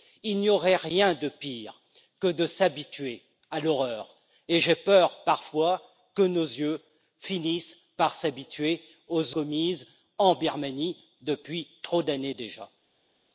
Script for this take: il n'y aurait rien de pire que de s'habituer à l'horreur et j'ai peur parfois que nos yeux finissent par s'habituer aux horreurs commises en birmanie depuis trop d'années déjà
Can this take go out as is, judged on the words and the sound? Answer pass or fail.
fail